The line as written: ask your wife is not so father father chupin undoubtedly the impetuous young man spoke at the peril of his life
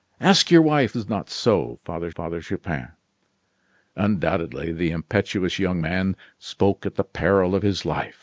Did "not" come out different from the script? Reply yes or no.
no